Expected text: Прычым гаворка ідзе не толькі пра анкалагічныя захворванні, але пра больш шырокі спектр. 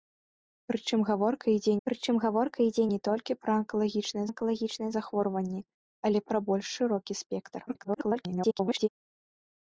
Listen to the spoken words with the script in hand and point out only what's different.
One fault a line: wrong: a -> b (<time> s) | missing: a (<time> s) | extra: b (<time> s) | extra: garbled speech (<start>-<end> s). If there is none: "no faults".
extra: прычым гаворка ідзе (1.9 s)
extra: анкалагічныя (4.3 s)
extra: garbled speech (7.7-8.9 s)